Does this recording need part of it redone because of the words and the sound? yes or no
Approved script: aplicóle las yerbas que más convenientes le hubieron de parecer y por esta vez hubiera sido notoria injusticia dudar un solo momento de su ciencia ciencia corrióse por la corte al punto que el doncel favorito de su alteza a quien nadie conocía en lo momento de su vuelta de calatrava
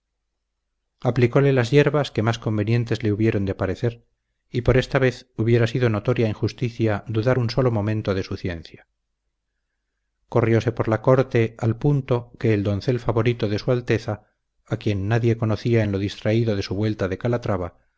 yes